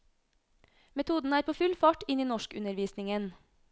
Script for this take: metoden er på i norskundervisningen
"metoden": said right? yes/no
yes